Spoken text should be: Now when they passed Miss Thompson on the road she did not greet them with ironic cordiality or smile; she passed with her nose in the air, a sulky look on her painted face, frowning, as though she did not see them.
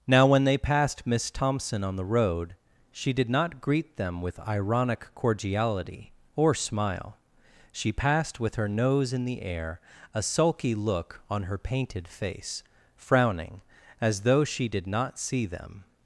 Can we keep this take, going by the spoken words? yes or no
yes